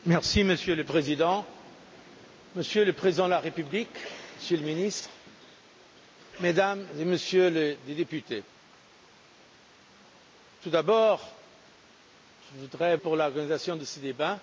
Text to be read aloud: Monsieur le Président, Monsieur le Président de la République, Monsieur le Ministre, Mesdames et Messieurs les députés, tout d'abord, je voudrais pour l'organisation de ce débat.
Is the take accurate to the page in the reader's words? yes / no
yes